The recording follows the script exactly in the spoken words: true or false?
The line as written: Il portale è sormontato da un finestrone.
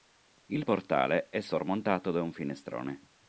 true